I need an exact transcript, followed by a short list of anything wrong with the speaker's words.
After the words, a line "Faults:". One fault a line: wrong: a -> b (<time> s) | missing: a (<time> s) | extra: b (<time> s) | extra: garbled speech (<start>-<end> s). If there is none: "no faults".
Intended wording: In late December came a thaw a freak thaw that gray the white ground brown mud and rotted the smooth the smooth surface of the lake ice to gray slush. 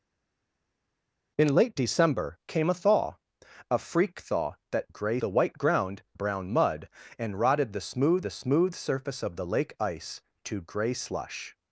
In late December came a thaw a freak thaw that gray the white ground brown mud and rotted the smooth the smooth surface of the lake ice to gray slush.
Faults:
no faults